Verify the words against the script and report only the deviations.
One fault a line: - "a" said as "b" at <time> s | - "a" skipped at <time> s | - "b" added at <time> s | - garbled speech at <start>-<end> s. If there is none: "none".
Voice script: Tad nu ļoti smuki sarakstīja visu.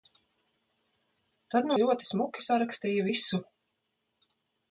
none